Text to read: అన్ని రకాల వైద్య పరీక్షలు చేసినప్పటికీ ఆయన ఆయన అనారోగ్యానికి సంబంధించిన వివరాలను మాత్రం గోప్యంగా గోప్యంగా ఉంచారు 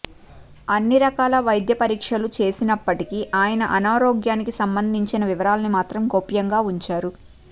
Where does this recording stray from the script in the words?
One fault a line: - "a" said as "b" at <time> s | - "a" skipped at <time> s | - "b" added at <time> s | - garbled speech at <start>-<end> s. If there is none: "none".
- "ఆయన" skipped at 3.6 s
- "గోప్యంగా" skipped at 6.6 s